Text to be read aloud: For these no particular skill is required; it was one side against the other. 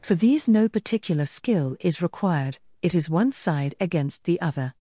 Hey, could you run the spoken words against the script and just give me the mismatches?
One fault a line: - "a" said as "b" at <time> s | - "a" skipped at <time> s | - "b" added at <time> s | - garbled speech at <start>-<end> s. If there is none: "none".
- "was" said as "is" at 3.0 s